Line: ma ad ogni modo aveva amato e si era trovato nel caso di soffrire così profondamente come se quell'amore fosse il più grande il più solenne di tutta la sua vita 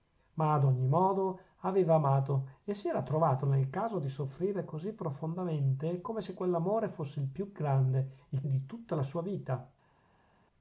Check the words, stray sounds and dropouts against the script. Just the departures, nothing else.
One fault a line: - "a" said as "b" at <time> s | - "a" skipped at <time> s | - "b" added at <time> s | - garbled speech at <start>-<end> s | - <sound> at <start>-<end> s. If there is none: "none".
- "più solenne" skipped at 8.4 s